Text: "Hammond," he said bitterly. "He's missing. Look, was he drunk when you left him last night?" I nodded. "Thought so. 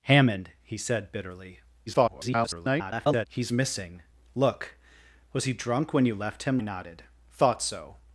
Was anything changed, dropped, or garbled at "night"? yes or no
yes